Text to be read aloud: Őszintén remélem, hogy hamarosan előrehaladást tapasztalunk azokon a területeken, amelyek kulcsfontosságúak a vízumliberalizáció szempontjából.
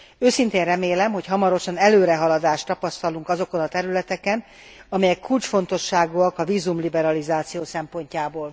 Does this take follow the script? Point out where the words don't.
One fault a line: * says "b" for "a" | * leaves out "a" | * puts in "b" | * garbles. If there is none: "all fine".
all fine